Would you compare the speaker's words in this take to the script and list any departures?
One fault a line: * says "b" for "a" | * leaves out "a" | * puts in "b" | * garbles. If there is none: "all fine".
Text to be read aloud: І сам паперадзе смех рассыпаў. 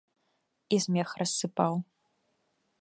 * leaves out "сам паперадзе"